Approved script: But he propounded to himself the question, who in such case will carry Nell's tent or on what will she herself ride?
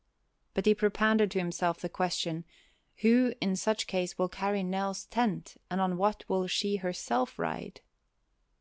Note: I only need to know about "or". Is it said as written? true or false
false